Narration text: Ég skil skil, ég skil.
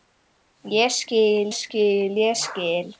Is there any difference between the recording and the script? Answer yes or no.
no